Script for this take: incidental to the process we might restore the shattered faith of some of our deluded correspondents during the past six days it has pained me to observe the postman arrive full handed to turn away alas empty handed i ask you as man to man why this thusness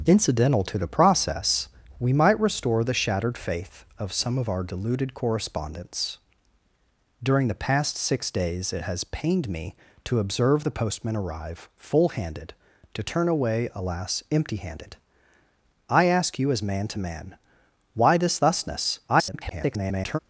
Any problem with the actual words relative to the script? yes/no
yes